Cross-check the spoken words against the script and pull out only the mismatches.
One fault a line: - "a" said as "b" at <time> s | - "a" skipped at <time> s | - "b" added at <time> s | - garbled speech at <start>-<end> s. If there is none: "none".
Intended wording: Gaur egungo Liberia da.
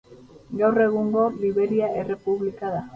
- "errepublika" added at 2.0 s